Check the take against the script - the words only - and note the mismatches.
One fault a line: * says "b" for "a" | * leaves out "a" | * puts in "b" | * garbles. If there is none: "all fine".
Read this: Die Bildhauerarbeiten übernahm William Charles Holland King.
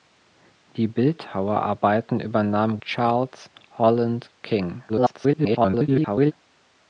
* leaves out "William"
* garbles